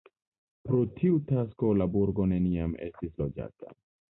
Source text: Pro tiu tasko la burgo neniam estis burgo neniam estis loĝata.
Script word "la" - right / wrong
right